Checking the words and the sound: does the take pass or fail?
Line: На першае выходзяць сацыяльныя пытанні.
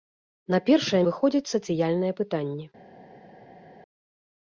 pass